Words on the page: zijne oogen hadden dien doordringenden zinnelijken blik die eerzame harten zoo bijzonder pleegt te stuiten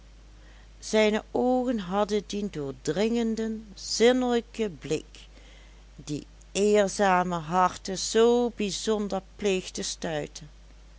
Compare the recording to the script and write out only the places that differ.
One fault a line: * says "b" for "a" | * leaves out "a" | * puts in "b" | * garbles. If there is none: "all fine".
all fine